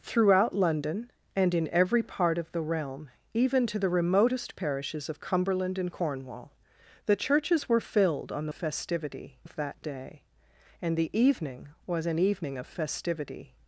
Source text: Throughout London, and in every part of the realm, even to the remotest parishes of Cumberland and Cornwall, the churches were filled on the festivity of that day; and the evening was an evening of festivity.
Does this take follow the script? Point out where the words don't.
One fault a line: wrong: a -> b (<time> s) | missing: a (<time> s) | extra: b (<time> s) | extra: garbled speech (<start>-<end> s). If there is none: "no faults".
no faults